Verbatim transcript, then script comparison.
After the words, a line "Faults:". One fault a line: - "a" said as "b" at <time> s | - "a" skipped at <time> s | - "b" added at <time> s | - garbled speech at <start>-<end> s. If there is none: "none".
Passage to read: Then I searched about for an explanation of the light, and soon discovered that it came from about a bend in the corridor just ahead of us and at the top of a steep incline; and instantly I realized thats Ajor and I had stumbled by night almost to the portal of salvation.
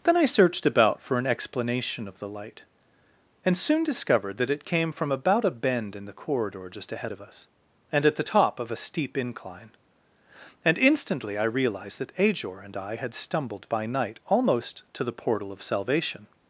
Then I searched about for an explanation of the light, and soon discovered that it came from about a bend in the corridor just ahead of us and at the top of a steep incline; and instantly I realized that Ajor and I had stumbled by night almost to the portal of salvation.
Faults:
- "thats" said as "that" at 12.0 s